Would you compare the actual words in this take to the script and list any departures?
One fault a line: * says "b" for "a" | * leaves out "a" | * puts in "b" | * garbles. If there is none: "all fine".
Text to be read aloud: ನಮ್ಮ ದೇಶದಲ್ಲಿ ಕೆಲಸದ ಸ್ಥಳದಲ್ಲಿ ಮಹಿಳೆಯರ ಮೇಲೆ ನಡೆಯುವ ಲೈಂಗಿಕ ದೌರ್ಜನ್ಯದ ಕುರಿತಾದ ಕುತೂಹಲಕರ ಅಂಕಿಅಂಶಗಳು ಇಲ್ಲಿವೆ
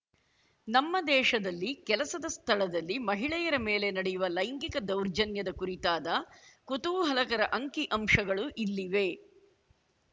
all fine